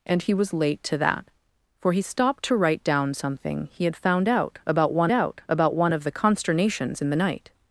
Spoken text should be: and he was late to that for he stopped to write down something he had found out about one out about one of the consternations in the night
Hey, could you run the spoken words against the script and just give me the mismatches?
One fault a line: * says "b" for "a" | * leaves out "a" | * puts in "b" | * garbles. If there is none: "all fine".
all fine